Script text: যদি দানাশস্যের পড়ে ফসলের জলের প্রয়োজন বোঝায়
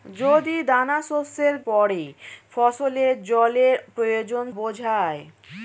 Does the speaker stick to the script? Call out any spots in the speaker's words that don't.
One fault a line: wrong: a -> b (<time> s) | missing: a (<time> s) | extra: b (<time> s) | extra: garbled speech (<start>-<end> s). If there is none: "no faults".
no faults